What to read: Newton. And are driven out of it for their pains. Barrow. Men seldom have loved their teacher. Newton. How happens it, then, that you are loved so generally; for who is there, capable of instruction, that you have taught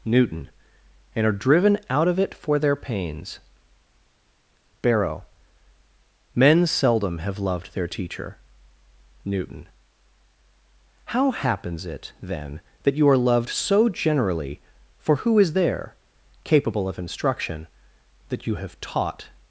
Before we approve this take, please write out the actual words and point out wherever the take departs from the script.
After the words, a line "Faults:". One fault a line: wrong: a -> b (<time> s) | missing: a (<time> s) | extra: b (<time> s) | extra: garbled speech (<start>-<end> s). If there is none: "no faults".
Newton. And are driven out of it for their pains. Barrow. Men seldom have loved their teacher. Newton. How happens it, then, that you are loved so generally; for who is there, capable of instruction, that you have taught
Faults:
no faults